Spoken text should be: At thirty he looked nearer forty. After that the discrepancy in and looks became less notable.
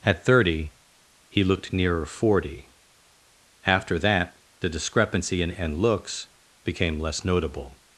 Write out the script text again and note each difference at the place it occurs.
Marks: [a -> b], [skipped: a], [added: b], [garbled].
At thirty he looked nearer forty. After that the discrepancy in and looks became less notable.